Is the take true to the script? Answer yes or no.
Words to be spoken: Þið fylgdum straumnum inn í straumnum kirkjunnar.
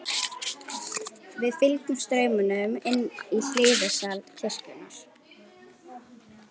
no